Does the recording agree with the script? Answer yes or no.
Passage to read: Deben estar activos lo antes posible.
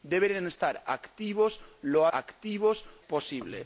no